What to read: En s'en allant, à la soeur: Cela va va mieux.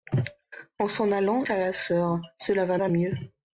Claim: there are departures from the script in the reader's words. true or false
false